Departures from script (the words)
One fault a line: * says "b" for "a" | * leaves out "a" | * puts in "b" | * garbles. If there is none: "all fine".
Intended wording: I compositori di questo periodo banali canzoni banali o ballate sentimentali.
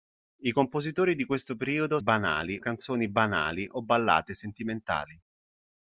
all fine